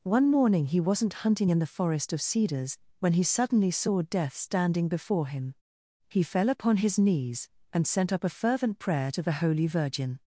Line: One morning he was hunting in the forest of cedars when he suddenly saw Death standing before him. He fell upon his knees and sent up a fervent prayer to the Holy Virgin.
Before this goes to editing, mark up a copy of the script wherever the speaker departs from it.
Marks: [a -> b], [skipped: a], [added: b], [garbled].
One morning he [was -> wasn't] hunting in the forest of cedars when he suddenly saw Death standing before him. He fell upon his knees and sent up a fervent prayer to the Holy Virgin.